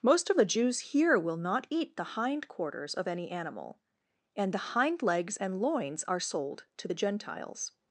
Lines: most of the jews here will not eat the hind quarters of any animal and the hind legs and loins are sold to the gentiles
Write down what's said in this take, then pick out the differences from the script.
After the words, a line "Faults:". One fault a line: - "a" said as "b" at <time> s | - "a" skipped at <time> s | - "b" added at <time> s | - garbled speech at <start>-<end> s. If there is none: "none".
most of the jews here will not eat the hind quarters of any animal and the hind legs and loins are sold to the gentiles
Faults:
none